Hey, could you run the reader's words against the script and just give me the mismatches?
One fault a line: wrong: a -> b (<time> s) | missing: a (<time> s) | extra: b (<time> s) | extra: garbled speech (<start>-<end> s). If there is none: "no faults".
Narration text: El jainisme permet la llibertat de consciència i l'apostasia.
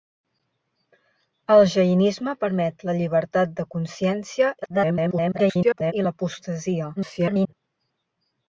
extra: garbled speech (4.6-5.9 s)
extra: garbled speech (7.0-7.5 s)